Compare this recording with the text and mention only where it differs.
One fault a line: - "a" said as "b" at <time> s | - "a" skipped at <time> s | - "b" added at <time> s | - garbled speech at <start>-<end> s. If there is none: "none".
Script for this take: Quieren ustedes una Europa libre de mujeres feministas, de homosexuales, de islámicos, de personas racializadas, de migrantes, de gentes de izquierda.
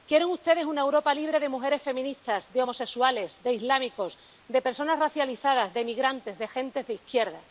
none